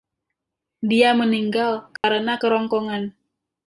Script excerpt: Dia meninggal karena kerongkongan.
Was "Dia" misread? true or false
false